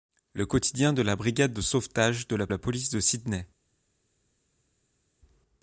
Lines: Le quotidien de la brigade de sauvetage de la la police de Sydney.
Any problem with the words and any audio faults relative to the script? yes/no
no